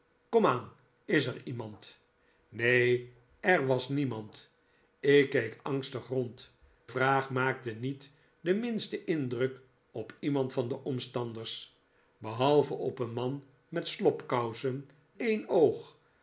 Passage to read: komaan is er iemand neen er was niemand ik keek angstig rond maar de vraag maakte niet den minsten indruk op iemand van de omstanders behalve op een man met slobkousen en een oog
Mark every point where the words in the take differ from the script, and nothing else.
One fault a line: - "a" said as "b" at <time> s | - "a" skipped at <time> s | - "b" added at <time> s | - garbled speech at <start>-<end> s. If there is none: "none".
- "maar de" skipped at 6.5 s
- "en" skipped at 14.9 s